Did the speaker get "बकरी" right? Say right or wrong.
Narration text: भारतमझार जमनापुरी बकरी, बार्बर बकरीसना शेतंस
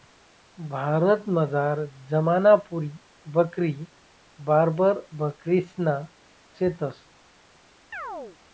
right